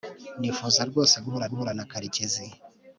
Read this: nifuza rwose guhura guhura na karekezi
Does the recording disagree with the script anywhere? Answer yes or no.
no